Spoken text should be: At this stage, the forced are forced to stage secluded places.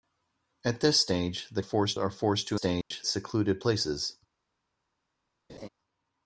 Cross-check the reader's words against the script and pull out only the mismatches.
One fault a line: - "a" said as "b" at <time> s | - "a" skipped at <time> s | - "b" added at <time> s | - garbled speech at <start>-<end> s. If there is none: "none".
none